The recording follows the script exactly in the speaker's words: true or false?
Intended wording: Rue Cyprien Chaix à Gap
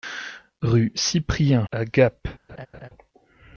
false